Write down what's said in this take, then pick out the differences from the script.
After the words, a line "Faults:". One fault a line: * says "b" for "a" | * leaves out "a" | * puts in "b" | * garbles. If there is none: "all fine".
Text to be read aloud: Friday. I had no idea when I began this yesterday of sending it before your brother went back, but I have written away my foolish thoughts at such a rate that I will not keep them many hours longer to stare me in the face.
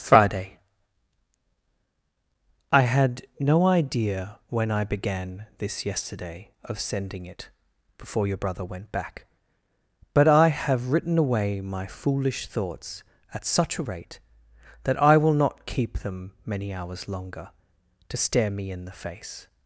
Friday. I had no idea when I began this yesterday of sending it before your brother went back, but I have written away my foolish thoughts at such a rate that I will not keep them many hours longer to stare me in the face.
Faults:
all fine